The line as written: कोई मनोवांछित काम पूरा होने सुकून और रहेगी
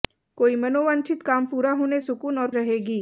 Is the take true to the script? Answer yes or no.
yes